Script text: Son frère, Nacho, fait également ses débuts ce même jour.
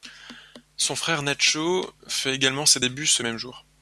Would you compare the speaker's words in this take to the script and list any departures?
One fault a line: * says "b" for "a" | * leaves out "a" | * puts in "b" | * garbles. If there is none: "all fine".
all fine